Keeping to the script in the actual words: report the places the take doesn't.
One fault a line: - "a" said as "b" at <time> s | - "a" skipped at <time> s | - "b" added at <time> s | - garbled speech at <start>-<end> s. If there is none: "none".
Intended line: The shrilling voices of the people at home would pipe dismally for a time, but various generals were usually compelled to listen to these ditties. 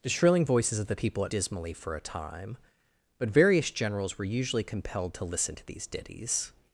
- "home would pipe" skipped at 1.3 s